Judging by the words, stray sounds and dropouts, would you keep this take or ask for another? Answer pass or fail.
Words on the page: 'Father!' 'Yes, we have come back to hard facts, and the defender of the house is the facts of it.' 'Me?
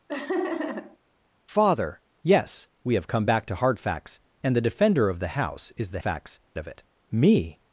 fail